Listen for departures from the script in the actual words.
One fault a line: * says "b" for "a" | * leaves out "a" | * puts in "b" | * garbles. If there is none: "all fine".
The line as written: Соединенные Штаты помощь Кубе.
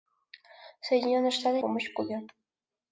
all fine